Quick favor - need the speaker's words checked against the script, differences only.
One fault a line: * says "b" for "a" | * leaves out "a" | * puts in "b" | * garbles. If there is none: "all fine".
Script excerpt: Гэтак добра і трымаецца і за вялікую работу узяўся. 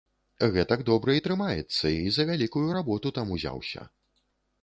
* puts in "там"